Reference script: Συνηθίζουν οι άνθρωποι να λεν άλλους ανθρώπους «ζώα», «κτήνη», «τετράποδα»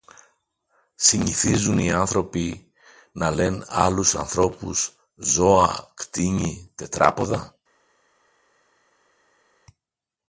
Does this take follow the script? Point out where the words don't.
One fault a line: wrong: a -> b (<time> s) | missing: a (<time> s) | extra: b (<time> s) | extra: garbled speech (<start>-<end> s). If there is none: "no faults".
no faults